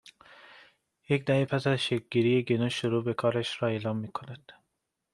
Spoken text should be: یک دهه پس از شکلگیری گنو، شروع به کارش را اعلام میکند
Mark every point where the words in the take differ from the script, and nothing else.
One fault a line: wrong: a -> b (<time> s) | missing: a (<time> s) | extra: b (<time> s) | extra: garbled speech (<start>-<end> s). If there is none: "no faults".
no faults